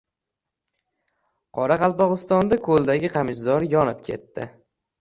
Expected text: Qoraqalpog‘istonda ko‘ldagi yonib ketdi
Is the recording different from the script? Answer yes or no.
yes